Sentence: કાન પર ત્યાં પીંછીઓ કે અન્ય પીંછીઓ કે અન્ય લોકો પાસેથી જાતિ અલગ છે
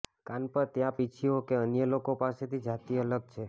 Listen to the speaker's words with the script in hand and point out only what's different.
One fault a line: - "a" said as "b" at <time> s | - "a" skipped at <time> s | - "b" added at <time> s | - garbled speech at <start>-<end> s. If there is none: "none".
- "પીંછીઓ કે અન્ય" skipped at 1.9 s